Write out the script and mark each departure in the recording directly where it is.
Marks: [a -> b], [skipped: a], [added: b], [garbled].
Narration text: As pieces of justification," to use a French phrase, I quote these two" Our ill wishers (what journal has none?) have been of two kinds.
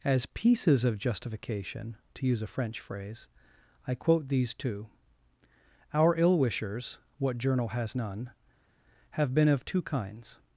As pieces of justification," to use a French phrase, I quote these two" Our ill wishers (what journal has none?) have been of two kinds.